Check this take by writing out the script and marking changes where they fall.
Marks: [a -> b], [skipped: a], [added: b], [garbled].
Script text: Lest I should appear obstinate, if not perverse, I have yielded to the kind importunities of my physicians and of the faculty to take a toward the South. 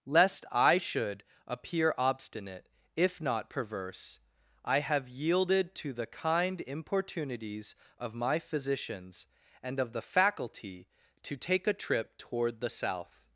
Lest I should appear obstinate, if not perverse, I have yielded to the kind importunities of my physicians and of the faculty to take a [added: trip] toward the South.